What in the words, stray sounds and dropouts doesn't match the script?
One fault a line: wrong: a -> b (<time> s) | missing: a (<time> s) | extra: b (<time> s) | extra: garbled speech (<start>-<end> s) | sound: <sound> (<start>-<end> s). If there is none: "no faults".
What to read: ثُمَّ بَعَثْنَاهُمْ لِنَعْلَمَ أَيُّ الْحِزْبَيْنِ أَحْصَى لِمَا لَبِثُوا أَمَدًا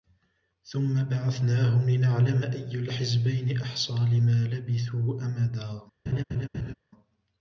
sound: laugh (6.1-6.7 s)